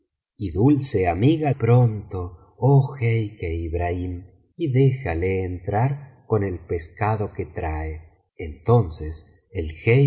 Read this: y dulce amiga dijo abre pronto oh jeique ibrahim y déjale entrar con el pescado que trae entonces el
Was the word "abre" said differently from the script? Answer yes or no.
yes